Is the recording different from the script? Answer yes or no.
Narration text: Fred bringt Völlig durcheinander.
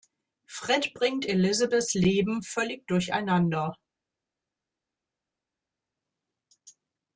yes